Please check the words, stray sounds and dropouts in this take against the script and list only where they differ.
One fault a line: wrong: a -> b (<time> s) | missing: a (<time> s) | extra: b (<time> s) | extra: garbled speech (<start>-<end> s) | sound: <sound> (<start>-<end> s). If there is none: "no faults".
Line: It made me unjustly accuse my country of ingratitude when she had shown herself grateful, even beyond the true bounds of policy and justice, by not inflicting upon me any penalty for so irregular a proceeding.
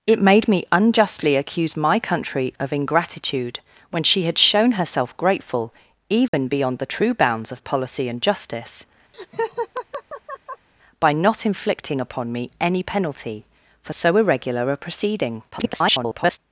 sound: dropout (6.3-6.3 s)
sound: laugh (9.1-10.7 s)
extra: garbled speech (15.5-16.4 s)